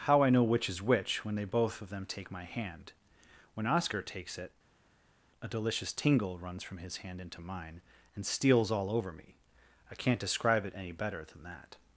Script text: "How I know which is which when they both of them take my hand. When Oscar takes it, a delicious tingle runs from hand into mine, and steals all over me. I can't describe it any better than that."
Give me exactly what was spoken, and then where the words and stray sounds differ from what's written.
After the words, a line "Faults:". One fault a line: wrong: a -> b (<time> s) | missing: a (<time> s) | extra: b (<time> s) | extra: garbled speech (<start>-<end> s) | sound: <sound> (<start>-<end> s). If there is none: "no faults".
"How I know which is which when they both of them take my hand. When Oscar takes it, a delicious tingle runs from his hand into mine, and steals all over me. I can't describe it any better than that."
Faults:
extra: his (6.8 s)